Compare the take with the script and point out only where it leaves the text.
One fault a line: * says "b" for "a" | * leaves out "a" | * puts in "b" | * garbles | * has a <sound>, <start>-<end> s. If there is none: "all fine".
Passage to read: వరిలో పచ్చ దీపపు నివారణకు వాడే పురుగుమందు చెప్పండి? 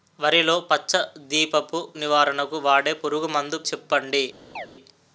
* has a chirp, 4.6-4.7 s